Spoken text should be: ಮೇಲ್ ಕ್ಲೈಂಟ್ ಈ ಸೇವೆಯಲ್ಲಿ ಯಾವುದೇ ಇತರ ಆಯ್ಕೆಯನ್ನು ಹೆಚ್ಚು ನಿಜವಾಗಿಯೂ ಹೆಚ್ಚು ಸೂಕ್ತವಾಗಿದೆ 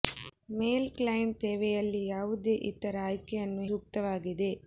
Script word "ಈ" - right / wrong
wrong